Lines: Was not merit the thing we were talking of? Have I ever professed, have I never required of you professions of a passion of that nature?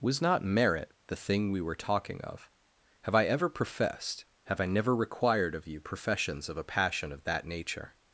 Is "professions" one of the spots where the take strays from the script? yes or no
no